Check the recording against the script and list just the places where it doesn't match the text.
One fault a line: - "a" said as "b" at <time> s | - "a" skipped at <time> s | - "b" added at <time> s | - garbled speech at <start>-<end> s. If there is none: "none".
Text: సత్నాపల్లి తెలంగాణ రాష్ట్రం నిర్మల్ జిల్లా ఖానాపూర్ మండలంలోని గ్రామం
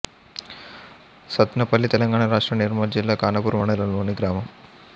none